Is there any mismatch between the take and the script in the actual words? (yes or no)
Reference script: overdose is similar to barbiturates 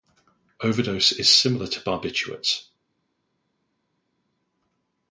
no